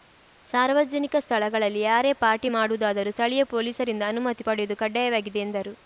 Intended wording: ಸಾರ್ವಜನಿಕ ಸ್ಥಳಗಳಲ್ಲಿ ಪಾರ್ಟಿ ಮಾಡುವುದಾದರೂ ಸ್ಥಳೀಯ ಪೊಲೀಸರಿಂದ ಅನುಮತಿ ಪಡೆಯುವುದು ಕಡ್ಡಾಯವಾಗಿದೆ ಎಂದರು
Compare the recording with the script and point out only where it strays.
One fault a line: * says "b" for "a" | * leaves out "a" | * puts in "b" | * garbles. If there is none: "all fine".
* puts in "ಯಾರೇ"